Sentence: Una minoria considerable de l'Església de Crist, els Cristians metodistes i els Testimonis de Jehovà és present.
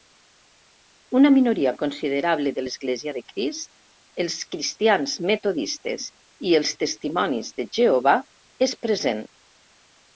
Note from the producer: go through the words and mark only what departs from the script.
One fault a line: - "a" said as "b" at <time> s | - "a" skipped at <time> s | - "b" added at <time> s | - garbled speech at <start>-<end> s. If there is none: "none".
none